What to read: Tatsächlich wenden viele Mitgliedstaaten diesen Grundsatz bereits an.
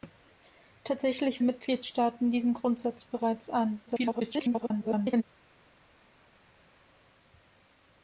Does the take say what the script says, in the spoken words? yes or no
no